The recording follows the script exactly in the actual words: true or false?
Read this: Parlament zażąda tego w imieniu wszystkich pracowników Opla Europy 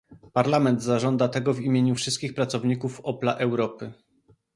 true